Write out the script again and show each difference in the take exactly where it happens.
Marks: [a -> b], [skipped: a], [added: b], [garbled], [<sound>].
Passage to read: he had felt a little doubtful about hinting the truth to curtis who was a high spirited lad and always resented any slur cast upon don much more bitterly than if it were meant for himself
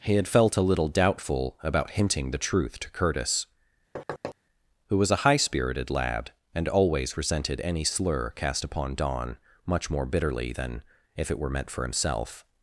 he had felt a little doubtful about hinting the truth to curtis [thud] who was a high spirited lad and always resented any slur cast upon don much more bitterly than if it were meant for himself